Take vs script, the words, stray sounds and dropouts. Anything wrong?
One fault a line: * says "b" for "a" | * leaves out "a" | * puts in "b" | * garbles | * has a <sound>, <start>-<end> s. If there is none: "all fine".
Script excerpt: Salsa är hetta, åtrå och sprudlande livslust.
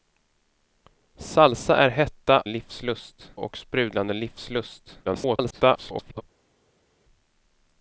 * says "livslust" for "åtrå"
* garbles